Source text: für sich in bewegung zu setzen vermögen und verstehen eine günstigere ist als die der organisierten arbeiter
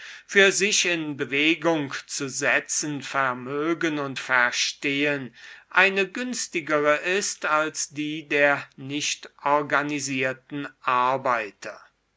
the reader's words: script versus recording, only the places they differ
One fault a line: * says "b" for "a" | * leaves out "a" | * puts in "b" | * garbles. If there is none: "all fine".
* puts in "nicht"